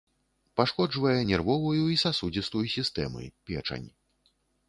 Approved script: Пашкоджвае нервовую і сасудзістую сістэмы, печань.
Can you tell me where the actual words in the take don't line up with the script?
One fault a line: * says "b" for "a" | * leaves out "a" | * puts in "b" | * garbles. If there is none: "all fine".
all fine